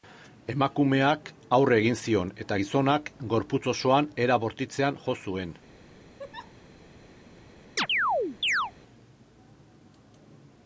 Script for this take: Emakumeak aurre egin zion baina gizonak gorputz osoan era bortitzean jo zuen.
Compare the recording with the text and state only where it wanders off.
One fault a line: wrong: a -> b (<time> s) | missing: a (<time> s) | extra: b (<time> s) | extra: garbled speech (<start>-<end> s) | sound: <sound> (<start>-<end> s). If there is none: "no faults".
wrong: baina -> eta (2.5 s)
sound: laugh (6.2-6.5 s)
sound: chirp (7.8-8.7 s)